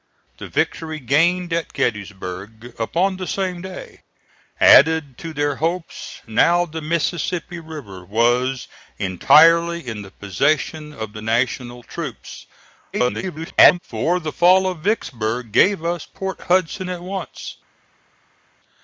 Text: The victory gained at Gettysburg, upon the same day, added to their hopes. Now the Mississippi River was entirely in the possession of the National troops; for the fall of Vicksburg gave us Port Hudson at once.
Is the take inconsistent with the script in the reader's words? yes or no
yes